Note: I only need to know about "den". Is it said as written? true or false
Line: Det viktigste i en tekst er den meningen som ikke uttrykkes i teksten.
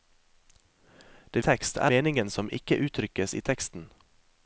false